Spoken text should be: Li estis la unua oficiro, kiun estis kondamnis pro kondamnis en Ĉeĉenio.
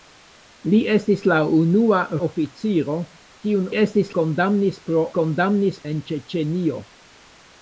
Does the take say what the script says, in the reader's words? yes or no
yes